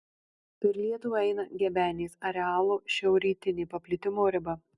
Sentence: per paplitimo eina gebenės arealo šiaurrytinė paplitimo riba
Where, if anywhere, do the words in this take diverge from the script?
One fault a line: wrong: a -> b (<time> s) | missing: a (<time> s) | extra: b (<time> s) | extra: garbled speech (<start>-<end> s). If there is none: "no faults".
wrong: paplitimo -> lietuvą (0.8 s)